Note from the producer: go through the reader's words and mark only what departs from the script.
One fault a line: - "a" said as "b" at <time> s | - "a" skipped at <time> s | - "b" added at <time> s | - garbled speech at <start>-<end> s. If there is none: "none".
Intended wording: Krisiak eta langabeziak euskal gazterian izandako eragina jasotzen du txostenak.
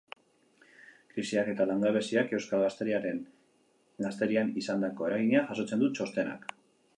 none